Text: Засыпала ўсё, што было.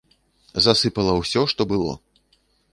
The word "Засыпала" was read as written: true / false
true